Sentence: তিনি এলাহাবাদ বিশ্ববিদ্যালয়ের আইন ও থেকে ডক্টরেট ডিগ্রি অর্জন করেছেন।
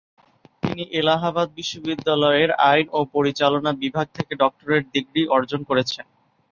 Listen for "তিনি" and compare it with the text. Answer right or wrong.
right